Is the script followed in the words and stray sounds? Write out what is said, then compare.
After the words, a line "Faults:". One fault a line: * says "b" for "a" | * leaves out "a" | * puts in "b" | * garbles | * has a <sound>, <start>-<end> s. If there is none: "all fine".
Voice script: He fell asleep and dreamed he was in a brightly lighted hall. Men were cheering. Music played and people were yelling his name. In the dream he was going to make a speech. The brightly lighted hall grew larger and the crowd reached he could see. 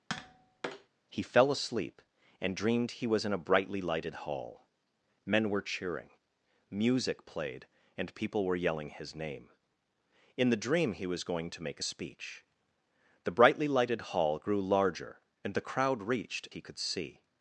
He fell asleep and dreamed he was in a brightly lighted hall. Men were cheering. Music played and people were yelling his name. In the dream he was going to make a speech. The brightly lighted hall grew larger and the crowd reached he could see.
Faults:
* has a tap, 0.1-0.9 s